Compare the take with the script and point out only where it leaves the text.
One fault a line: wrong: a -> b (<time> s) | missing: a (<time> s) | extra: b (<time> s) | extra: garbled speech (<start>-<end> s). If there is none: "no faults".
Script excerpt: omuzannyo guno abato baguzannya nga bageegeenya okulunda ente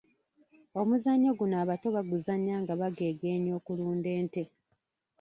no faults